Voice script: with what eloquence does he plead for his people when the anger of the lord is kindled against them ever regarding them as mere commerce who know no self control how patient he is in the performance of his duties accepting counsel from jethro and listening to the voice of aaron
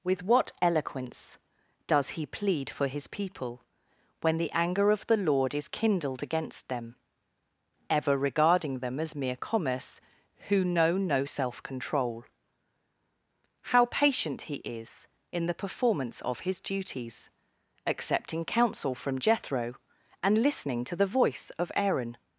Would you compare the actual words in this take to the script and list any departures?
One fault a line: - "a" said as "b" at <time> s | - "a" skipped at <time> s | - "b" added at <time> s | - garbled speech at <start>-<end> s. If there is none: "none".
none